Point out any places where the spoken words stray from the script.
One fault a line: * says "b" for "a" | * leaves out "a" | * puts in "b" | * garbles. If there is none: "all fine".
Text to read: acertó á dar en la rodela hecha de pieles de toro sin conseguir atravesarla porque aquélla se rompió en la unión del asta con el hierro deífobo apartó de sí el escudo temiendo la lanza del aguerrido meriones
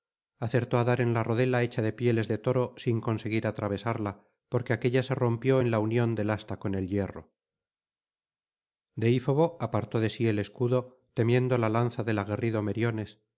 all fine